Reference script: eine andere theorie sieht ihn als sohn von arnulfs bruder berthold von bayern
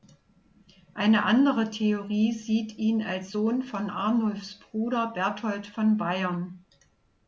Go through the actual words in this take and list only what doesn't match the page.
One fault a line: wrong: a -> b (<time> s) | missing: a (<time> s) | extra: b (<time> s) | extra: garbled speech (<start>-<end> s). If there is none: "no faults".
no faults